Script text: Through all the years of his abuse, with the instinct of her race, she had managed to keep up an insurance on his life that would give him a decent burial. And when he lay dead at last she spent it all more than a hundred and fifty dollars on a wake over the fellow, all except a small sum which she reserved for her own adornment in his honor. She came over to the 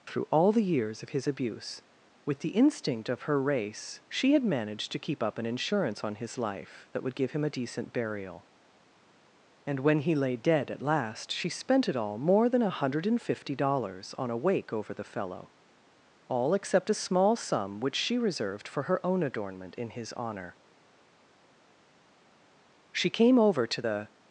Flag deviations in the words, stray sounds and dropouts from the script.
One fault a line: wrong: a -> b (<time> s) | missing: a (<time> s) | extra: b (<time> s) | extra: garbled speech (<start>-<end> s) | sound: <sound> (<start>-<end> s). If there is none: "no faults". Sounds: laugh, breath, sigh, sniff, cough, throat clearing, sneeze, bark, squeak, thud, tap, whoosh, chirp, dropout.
no faults